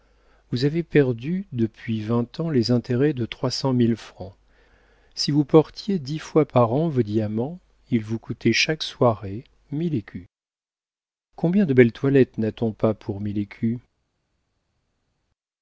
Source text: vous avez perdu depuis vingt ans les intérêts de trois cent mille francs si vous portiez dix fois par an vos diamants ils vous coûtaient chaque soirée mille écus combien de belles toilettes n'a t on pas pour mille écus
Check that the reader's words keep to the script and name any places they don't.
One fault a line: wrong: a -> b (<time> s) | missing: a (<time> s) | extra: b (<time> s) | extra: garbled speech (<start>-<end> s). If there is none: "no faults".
no faults